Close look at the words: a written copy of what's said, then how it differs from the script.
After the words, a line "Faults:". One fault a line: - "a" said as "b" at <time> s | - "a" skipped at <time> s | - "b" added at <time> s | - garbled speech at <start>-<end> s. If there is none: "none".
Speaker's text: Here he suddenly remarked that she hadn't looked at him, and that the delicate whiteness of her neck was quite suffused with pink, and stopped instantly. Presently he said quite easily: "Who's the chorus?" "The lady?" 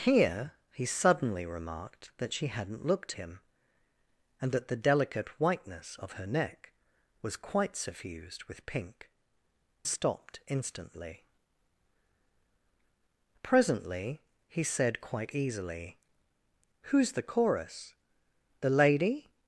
Here he suddenly remarked that she hadn't looked him, and that the delicate whiteness of her neck was quite suffused with pink, stopped instantly. Presently he said quite easily: "Who's the chorus?" "The lady?"
Faults:
- "at" skipped at 3.1 s
- "and" skipped at 9.1 s